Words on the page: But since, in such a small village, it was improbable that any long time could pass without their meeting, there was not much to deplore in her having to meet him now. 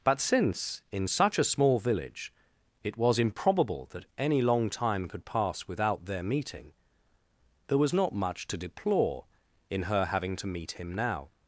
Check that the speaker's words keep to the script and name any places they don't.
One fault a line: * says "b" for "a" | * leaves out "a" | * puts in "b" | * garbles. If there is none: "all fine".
all fine